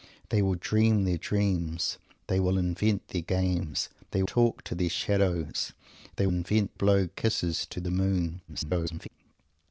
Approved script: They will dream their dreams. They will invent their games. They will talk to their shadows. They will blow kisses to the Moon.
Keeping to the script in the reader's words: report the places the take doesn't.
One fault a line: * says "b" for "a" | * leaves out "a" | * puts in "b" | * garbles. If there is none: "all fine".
* leaves out "will"
* says "invent" for "will"
* garbles